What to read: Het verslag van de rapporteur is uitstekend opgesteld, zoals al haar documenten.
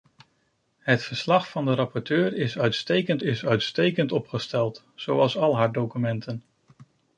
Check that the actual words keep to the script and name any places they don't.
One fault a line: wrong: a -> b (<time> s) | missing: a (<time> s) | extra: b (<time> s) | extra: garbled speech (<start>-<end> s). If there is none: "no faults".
extra: is uitstekend (3.2 s)